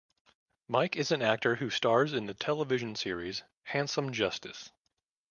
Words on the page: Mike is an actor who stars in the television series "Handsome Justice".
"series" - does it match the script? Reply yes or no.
yes